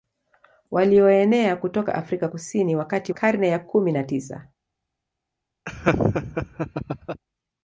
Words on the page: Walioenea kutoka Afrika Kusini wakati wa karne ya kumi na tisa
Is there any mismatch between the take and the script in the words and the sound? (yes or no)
yes